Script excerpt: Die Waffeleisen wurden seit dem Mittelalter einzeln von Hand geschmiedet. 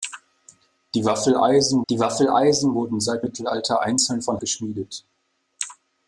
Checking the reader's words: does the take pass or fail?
fail